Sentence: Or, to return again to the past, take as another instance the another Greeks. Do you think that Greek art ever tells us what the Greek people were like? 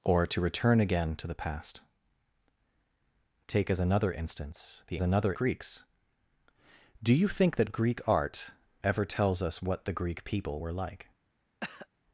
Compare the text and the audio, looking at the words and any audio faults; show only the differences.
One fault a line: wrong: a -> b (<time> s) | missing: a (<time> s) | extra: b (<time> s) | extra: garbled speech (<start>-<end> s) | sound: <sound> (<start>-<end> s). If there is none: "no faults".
sound: cough (11.6-11.9 s)